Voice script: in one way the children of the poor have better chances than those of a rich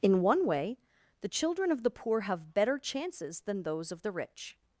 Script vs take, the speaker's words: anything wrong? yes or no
yes